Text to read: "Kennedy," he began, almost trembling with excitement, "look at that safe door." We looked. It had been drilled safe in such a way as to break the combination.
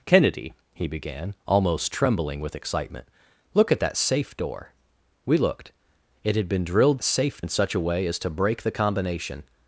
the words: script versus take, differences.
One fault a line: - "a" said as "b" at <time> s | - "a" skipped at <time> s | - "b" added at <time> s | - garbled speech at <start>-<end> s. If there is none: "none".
none